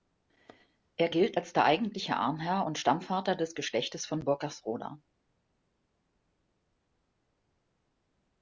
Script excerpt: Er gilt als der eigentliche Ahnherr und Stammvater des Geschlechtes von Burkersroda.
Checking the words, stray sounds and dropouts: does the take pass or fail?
pass